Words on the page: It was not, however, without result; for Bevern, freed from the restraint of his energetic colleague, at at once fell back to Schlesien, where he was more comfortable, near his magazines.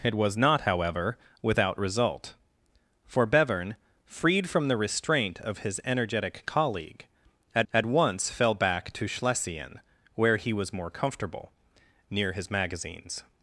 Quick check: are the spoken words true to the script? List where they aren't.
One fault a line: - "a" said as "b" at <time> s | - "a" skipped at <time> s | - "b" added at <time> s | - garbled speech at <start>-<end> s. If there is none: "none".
none